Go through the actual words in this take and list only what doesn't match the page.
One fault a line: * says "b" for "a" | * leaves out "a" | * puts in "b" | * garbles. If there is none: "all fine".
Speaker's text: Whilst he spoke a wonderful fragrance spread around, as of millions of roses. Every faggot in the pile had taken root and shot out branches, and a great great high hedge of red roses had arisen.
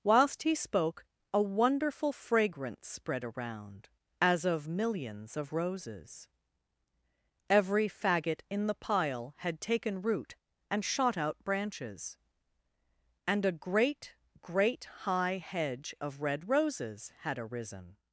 all fine